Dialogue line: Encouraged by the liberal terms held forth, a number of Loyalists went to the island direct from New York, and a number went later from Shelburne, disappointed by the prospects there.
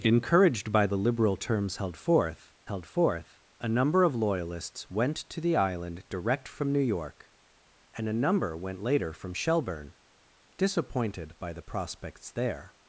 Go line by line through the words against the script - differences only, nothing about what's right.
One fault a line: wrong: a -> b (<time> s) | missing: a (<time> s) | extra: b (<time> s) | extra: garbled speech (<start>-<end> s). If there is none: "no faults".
extra: held forth (2.7 s)